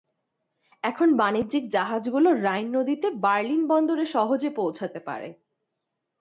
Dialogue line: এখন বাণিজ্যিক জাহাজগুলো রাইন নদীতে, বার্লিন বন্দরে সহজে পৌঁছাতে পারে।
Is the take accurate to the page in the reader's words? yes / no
yes